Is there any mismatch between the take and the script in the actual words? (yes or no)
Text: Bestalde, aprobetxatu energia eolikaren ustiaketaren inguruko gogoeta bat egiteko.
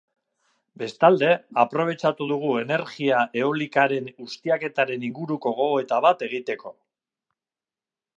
yes